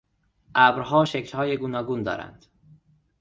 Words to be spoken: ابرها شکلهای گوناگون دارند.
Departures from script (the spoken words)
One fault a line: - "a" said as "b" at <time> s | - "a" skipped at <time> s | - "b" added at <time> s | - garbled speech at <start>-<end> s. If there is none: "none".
none